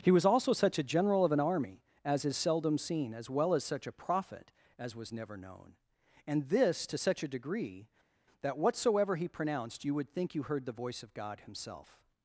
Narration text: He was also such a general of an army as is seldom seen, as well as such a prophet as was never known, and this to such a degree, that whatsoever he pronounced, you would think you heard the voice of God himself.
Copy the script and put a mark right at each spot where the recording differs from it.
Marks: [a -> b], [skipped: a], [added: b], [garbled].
He was also such a general of an army as is seldom seen, as well as such a prophet as was never known, and this to such a degree, that whatsoever he pronounced, you would think you heard the voice of God himself.